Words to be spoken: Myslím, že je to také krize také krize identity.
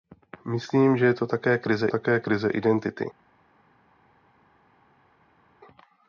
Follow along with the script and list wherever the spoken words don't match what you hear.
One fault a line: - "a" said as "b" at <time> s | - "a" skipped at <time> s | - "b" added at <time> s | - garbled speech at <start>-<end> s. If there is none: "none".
none